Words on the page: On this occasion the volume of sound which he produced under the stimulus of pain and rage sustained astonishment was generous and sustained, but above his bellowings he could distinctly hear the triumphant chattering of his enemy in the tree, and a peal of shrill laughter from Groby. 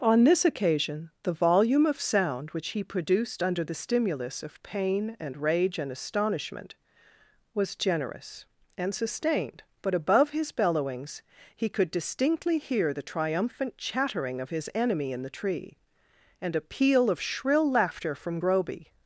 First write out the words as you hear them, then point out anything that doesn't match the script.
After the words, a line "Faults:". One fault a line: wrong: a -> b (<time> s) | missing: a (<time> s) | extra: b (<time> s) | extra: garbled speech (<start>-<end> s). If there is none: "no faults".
On this occasion the volume of sound which he produced under the stimulus of pain and rage and astonishment was generous and sustained, but above his bellowings he could distinctly hear the triumphant chattering of his enemy in the tree, and a peal of shrill laughter from Groby.
Faults:
wrong: sustained -> and (5.8 s)